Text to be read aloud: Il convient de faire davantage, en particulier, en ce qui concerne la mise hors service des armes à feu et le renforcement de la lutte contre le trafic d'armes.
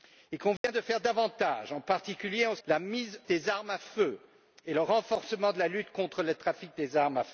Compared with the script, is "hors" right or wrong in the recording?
wrong